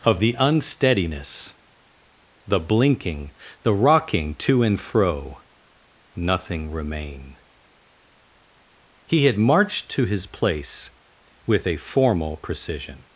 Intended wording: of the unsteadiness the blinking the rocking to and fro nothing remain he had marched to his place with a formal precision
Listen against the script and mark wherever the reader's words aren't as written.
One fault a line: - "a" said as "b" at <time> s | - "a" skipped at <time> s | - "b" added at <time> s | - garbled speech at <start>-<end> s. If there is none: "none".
none